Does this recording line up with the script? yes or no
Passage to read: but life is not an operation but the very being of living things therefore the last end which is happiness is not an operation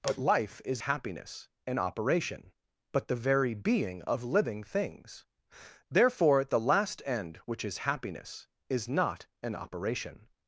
no